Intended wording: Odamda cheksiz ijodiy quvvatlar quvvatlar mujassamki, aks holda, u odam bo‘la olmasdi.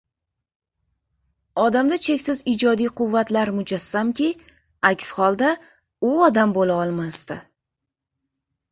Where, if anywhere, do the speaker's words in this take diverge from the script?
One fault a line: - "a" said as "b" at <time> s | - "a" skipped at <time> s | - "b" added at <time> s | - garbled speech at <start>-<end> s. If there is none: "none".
- "quvvatlar" skipped at 3.5 s